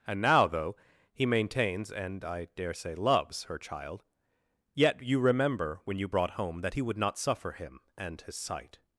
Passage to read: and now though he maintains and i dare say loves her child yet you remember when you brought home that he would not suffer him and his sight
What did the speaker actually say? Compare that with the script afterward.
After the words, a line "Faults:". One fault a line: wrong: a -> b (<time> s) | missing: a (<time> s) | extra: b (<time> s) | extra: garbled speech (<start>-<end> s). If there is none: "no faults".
and now though he maintains and i dare say loves her child yet you remember when you brought home that he would not suffer him and his sight
Faults:
no faults